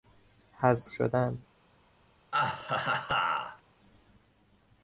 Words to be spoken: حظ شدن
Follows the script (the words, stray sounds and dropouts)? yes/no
no